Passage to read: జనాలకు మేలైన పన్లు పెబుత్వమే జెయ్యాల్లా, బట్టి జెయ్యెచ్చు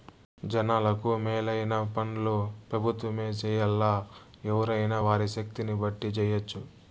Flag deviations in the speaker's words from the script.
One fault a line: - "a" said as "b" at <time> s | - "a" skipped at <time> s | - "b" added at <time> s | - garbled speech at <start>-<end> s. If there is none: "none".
- "ఎవ్వురైనా వారి శక్తిని" added at 4.5 s